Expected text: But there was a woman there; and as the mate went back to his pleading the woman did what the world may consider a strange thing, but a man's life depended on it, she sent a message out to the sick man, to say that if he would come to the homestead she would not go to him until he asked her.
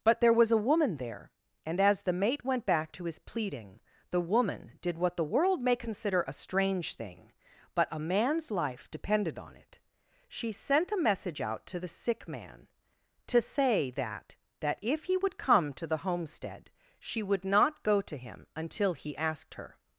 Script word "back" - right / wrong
right